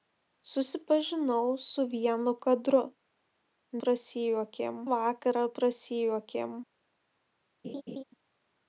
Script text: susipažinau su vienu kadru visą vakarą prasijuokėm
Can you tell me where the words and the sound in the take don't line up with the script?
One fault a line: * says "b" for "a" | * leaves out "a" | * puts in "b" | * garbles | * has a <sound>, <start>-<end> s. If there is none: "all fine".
* says "prasijuokėm" for "visą"
* has a laugh, 7.6-8.0 s